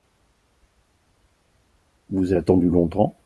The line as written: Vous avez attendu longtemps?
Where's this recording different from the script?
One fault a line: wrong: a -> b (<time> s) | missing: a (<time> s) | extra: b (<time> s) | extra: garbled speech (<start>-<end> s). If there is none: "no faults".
missing: avez (2.3 s)